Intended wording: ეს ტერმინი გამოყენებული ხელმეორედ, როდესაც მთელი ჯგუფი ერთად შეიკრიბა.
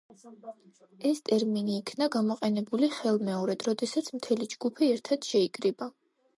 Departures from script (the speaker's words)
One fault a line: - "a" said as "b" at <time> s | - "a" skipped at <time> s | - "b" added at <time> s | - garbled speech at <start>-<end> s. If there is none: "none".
- "იქნა" added at 1.8 s